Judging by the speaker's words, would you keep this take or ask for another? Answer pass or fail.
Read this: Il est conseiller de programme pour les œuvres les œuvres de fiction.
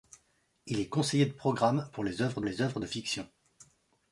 pass